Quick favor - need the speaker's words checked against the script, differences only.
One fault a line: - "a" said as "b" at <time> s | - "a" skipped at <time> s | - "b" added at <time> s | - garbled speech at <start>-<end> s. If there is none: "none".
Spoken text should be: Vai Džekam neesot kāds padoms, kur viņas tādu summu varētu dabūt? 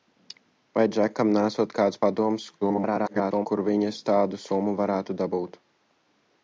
- garbled speech at 2.6-3.5 s